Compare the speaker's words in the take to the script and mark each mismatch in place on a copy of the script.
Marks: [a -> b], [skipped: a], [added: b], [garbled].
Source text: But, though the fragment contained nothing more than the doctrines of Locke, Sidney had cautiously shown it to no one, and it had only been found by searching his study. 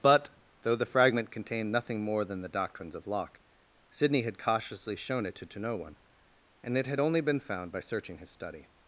But, though the fragment contained nothing more than the doctrines of Locke, Sidney had cautiously shown it to [added: to] no one, and it had only been found by searching his study.